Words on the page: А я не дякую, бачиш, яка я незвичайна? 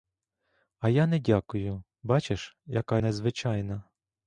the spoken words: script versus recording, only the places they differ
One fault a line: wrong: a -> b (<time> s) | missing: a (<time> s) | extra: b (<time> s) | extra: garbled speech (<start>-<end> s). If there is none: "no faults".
missing: я (3.0 s)